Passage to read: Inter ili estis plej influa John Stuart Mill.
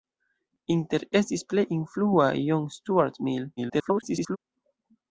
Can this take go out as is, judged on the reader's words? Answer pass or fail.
fail